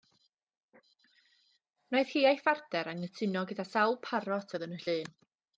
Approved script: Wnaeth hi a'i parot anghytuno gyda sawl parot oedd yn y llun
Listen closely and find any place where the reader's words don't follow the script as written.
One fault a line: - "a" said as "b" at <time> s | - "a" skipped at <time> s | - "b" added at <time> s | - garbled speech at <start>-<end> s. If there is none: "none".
- "parot" said as "phartner" at 2.5 s